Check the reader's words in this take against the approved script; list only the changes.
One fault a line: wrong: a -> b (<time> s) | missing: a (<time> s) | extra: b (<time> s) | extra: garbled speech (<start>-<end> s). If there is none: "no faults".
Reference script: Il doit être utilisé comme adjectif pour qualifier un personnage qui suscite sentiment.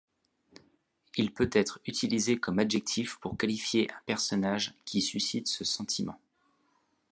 wrong: doit -> peut (1.3 s)
extra: ce (5.5 s)